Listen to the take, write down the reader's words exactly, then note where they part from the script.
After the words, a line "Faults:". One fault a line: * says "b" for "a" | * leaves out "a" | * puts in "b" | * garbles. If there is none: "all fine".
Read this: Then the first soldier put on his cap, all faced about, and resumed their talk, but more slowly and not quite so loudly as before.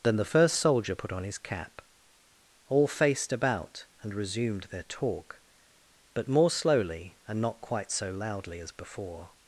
Then the first soldier put on his cap, all faced about, and resumed their talk, but more slowly and not quite so loudly as before.
Faults:
all fine